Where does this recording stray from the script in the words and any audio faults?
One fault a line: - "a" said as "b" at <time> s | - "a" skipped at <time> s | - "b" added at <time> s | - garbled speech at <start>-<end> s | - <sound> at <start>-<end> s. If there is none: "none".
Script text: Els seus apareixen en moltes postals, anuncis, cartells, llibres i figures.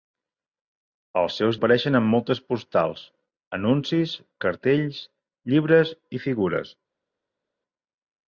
none